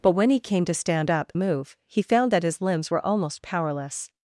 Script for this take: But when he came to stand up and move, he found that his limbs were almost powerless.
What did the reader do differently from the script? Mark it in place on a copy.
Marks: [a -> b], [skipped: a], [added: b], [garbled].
But when he came to stand up [skipped: and] move, he found that his limbs were almost powerless.